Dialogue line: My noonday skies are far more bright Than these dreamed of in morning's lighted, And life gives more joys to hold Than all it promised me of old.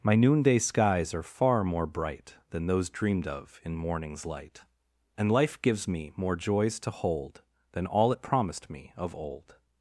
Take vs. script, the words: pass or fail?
fail